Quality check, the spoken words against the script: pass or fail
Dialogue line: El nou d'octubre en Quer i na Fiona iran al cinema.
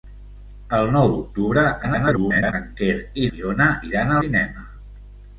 fail